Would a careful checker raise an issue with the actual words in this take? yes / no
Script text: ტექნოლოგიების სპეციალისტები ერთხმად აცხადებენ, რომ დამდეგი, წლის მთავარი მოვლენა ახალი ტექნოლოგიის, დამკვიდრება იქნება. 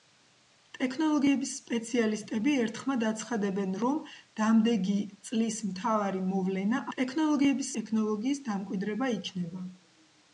yes